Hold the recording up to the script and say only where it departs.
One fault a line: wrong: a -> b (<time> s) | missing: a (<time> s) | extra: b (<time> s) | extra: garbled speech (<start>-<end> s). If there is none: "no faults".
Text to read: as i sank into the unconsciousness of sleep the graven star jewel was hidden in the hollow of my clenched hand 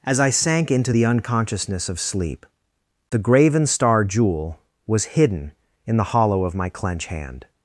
wrong: clenched -> clench (6.7 s)